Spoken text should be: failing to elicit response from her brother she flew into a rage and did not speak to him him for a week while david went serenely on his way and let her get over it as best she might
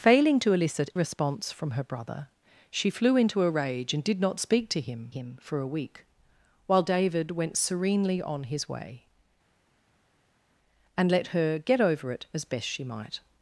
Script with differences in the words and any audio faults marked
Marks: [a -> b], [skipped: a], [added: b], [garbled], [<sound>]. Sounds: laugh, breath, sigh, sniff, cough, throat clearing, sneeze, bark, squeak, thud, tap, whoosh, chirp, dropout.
failing to elicit response from her brother she flew into a rage and did not speak to him him for a week while david went serenely on his way and let her get over it as best she might